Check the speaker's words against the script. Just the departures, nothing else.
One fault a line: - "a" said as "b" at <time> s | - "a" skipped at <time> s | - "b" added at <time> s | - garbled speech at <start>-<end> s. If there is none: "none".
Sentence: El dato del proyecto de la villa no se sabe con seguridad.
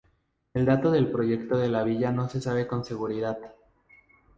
none